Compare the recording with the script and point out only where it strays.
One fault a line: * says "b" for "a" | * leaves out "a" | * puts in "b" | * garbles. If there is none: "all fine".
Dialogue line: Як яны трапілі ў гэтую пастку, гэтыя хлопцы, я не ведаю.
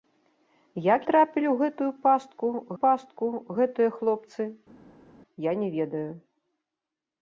* leaves out "яны"
* puts in "пастку"